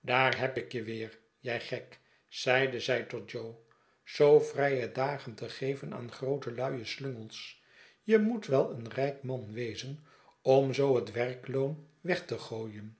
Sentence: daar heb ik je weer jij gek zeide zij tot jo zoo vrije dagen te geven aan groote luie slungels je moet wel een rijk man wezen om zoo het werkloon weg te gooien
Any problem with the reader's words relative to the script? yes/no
no